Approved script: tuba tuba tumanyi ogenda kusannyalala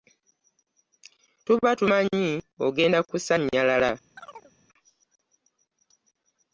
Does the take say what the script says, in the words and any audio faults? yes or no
no